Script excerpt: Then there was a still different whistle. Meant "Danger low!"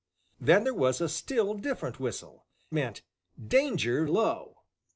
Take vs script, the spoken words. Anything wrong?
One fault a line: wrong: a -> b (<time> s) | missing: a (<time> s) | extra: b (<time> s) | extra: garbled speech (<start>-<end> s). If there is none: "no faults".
no faults